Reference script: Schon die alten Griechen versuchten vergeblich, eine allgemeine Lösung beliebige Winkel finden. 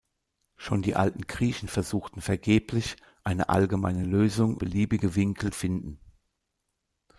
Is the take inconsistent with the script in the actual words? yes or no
no